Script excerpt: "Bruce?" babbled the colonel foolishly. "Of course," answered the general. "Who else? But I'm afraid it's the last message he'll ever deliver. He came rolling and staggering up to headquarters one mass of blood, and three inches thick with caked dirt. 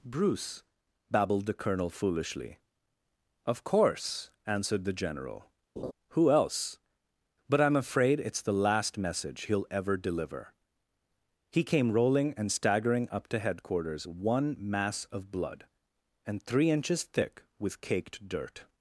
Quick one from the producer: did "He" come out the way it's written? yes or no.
yes